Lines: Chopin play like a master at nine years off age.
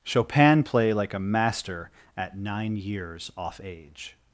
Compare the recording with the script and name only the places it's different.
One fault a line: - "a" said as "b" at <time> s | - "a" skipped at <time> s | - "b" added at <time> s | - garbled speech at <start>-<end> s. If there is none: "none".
none